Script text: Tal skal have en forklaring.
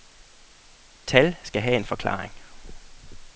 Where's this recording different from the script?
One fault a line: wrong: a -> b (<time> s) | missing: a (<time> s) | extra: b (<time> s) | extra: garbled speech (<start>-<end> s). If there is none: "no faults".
no faults